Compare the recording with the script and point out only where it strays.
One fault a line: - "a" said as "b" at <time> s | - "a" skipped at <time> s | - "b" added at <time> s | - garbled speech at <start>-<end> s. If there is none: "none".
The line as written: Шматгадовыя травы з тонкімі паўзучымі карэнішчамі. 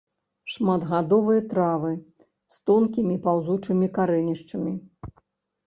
none